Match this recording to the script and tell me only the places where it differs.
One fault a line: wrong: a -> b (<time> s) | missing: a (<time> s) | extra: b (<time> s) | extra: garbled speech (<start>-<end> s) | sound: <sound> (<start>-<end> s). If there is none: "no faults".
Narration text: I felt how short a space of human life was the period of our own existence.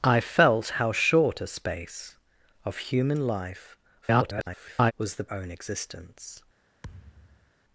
extra: garbled speech (4.0-4.9 s)
missing: period of our (5.3 s)
sound: thud (6.8-7.5 s)